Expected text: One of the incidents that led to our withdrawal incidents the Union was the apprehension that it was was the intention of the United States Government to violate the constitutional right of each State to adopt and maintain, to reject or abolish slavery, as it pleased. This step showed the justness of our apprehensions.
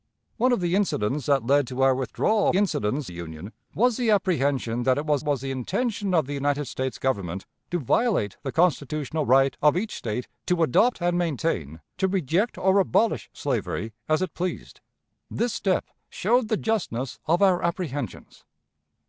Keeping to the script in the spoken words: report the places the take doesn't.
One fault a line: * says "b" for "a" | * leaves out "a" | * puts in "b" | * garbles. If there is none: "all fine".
all fine